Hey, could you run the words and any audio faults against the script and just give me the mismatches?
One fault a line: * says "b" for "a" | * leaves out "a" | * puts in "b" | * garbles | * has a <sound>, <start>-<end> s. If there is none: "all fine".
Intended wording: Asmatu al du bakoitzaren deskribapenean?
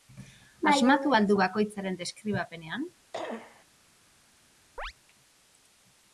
* has a cough, 3.1-3.7 s
* has a chirp, 4.8-4.9 s